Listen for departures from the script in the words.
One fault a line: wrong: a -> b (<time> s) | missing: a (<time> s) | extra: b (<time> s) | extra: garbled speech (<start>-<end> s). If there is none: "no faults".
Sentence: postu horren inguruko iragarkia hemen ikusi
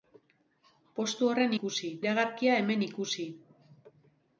wrong: inguruko -> ikusi (1.6 s)